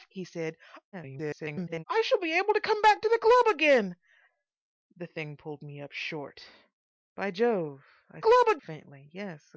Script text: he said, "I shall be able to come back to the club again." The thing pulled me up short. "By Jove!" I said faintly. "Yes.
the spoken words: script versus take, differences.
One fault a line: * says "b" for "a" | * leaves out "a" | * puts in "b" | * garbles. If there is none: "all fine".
* garbles
* says "club" for "said"